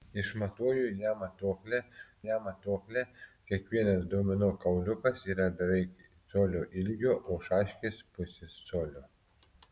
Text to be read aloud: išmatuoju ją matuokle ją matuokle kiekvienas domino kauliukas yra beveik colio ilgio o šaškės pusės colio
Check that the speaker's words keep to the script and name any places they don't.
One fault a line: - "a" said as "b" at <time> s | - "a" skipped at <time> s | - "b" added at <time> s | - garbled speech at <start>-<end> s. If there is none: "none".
none